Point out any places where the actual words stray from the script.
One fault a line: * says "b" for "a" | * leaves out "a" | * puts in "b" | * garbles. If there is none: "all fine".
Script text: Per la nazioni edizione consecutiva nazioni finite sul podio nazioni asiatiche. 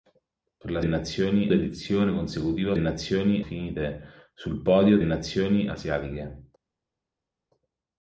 all fine